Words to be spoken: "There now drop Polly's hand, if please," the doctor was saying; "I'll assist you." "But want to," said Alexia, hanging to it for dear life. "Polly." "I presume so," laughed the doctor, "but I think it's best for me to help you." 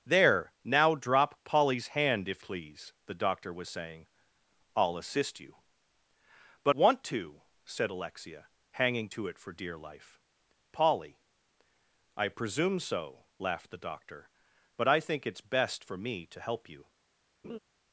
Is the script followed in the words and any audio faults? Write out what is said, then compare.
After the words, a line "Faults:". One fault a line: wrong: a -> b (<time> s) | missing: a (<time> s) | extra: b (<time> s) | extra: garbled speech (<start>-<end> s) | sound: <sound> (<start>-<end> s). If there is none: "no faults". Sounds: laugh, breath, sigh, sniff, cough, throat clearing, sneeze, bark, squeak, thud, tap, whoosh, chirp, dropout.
"There now drop Polly's hand, if please," the doctor was saying; "I'll assist you." "But want to," said Alexia, hanging to it for dear life. "Polly." "I presume so," laughed the doctor, "but I think it's best for me to help you."
Faults:
sound: laugh (17.4-17.6 s)